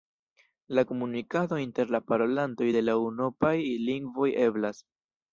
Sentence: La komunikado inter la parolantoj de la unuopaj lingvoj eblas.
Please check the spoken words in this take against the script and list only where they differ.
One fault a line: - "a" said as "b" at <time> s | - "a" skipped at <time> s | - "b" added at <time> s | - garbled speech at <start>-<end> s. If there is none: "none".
none